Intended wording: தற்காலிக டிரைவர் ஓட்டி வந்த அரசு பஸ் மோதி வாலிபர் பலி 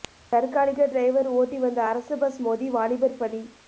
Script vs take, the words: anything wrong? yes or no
no